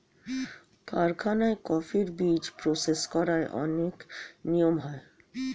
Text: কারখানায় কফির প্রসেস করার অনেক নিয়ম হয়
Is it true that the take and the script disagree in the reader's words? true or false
true